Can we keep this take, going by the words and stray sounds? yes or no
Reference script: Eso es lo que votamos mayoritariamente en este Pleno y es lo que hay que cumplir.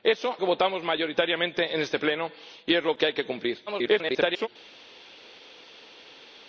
no